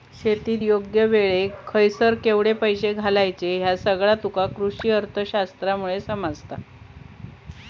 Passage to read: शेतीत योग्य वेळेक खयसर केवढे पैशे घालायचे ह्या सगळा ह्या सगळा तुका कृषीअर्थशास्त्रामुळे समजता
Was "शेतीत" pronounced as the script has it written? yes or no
yes